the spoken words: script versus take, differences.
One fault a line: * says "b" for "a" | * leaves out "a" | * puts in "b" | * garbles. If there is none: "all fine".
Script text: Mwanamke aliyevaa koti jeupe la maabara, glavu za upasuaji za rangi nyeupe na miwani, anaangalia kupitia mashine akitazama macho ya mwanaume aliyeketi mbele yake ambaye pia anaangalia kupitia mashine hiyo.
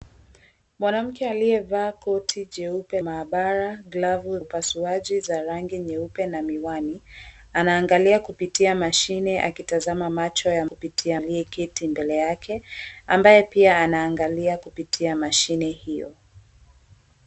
* leaves out "la"
* leaves out "za"
* says "kupitia" for "mwanaume"